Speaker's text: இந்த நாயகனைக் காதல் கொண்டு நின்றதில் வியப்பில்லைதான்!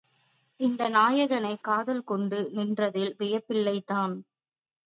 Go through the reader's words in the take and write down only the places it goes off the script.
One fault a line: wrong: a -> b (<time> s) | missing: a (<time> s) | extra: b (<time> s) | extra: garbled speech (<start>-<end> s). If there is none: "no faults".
no faults